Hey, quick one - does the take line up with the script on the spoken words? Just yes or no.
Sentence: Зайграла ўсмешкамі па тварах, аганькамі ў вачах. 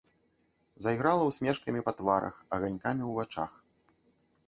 yes